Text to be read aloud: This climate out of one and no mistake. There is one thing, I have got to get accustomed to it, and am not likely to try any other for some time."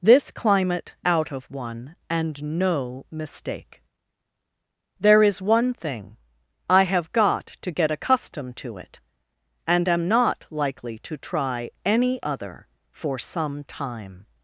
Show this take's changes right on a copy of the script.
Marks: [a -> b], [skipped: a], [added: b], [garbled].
This climate out of one and no mistake. There is one thing, I have got to get accustomed to it, and am not likely to try any other for some time."